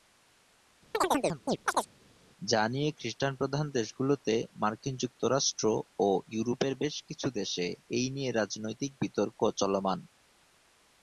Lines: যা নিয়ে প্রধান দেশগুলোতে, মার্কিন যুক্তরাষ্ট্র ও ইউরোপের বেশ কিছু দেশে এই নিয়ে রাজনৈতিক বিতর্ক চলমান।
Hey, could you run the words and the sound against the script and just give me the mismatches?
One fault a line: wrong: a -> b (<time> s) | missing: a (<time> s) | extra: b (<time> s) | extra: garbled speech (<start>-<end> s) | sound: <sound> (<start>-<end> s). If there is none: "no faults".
sound: chirp (0.9-1.9 s)
extra: খ্রিস্টান (2.9 s)